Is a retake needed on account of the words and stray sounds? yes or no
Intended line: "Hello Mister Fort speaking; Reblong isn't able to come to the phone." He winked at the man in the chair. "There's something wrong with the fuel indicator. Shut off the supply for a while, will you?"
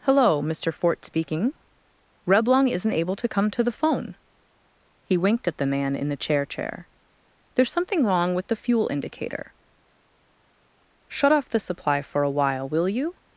yes